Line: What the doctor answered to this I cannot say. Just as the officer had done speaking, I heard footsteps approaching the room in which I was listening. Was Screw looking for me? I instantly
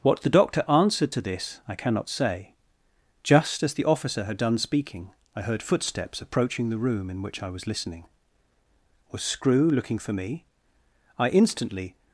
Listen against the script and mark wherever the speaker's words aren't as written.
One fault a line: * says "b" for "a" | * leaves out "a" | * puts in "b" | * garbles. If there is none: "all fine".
all fine